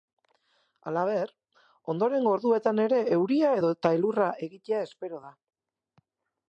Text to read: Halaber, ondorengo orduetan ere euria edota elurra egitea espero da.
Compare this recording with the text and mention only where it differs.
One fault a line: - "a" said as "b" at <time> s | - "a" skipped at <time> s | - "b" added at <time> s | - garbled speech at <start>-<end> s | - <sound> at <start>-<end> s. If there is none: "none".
none